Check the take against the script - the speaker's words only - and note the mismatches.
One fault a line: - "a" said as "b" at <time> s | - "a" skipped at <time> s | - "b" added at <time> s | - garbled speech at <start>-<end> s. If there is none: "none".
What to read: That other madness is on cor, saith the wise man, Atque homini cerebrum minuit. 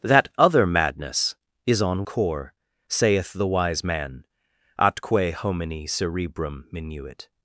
none